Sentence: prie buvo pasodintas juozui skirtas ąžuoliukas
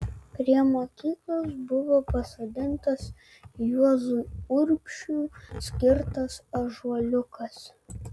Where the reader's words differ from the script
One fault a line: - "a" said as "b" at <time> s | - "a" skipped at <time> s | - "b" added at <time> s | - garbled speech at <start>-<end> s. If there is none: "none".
- "mokyklos" added at 0.7 s
- "urbšiui" added at 4.6 s